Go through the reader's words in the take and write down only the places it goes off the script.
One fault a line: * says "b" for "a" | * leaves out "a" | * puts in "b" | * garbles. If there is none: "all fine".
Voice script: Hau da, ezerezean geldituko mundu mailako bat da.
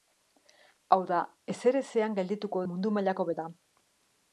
all fine